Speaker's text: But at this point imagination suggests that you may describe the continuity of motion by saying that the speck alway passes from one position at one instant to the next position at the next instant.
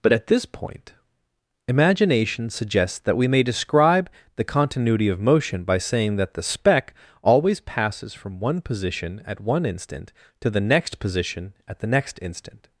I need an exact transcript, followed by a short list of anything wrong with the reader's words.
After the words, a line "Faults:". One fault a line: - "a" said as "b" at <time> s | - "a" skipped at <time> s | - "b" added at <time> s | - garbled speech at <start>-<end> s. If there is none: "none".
But at this point imagination suggests that we may describe the continuity of motion by saying that the speck always passes from one position at one instant to the next position at the next instant.
Faults:
- "you" said as "we" at 3.1 s
- "alway" said as "always" at 7.2 s